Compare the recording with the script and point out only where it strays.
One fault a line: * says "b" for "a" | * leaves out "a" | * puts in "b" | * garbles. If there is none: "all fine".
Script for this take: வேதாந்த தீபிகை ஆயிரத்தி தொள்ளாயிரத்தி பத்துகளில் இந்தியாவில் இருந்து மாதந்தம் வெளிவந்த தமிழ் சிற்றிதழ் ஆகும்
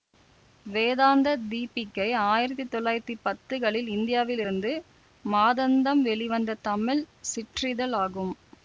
all fine